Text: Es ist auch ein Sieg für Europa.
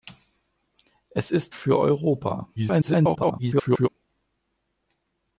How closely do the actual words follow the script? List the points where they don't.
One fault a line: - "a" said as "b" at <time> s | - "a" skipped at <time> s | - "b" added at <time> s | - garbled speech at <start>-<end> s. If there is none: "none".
- "auch ein Sieg" skipped at 1.6 s
- garbled speech at 2.5-3.9 s